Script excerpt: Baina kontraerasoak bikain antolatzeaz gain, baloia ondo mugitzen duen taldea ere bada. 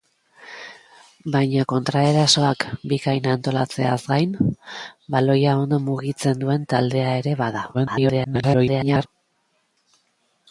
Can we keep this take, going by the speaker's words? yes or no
no